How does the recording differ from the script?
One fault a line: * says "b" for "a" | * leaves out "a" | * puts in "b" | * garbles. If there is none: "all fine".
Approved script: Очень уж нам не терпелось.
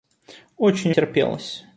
* leaves out "уж нам не"